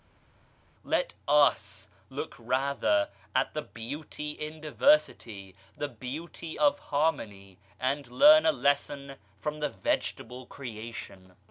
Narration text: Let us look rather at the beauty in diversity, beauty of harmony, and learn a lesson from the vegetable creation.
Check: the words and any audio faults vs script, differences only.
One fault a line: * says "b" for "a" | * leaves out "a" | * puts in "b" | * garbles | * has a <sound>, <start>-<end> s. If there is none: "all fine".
* puts in "the"